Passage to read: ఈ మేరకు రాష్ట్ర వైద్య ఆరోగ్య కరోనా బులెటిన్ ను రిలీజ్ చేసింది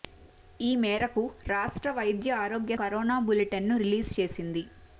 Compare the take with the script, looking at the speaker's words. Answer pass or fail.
pass